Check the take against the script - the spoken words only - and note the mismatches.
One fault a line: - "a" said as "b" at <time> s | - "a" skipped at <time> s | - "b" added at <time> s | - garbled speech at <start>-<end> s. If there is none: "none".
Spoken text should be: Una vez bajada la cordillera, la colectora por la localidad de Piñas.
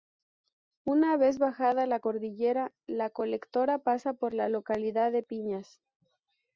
- "pasa" added at 3.8 s